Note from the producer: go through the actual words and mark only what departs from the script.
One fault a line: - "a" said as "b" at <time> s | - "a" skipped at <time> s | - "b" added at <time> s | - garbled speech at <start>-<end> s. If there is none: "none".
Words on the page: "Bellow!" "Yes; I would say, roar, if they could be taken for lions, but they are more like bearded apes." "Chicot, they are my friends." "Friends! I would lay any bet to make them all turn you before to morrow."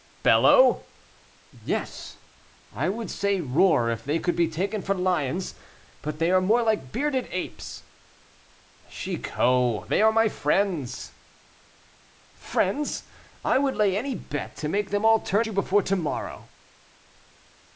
none